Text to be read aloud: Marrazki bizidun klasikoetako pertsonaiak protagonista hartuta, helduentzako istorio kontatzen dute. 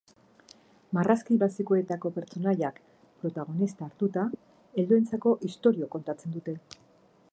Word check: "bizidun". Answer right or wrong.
wrong